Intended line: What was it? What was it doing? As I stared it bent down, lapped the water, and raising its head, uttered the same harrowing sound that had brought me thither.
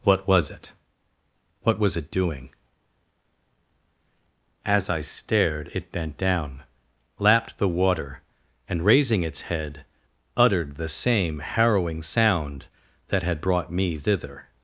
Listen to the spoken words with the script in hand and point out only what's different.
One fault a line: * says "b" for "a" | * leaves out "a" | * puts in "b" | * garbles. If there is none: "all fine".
all fine